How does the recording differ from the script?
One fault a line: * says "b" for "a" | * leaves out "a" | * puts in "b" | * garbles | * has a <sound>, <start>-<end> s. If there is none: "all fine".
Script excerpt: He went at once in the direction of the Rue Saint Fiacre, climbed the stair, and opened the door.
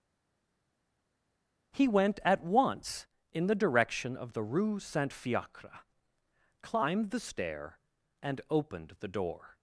all fine